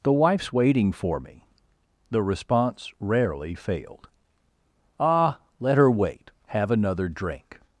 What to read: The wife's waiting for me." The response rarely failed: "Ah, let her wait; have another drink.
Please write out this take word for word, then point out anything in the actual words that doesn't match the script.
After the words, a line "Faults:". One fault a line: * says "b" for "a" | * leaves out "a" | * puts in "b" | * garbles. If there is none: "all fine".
The wife's waiting for me." The response rarely failed: "Ah, let her wait; have another drink.
Faults:
all fine